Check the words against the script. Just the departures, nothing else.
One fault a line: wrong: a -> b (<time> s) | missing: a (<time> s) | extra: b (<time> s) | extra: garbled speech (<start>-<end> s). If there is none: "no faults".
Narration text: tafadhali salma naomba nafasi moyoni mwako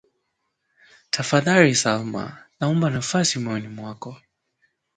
no faults